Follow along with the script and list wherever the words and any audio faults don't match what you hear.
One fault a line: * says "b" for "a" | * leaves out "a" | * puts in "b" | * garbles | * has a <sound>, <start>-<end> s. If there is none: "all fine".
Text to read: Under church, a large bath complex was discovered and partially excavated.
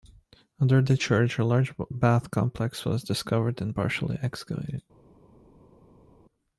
* puts in "the"